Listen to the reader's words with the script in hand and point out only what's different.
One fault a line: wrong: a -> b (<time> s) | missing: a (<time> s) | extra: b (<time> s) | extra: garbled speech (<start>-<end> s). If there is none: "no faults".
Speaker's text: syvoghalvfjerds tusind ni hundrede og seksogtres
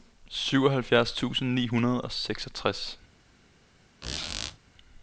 no faults